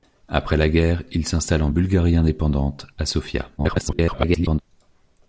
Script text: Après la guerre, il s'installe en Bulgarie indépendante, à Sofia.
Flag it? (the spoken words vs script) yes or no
yes